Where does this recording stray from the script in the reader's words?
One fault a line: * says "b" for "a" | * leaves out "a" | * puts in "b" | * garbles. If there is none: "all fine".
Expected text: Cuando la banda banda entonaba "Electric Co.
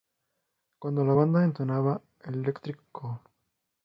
* leaves out "banda"